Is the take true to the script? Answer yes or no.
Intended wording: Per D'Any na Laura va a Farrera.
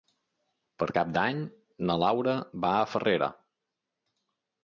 no